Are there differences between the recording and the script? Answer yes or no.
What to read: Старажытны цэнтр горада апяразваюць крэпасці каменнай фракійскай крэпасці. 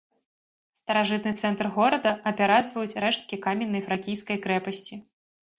yes